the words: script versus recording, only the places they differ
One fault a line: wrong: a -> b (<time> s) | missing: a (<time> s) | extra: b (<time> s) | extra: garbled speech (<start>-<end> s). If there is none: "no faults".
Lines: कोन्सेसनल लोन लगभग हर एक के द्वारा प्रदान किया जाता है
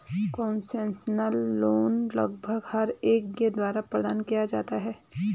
no faults